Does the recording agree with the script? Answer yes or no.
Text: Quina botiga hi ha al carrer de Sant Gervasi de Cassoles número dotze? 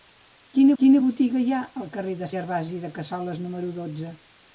no